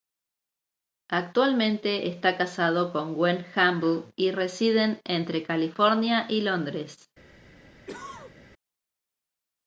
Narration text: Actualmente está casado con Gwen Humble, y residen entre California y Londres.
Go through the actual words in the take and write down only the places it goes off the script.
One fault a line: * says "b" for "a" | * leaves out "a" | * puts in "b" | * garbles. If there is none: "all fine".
all fine